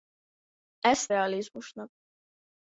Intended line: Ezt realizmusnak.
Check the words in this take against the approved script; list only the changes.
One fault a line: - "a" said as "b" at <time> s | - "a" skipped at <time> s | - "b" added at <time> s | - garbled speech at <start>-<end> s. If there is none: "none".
none